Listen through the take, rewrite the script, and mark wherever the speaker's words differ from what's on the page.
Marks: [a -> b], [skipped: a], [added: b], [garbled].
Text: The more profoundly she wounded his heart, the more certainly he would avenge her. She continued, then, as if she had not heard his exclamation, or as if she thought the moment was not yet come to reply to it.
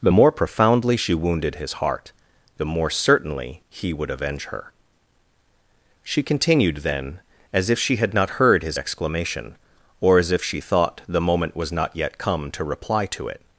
The more profoundly she wounded his heart, the more certainly he would avenge her. She continued, then, as if she had not heard his exclamation, or as if she thought the moment was not yet come to reply to it.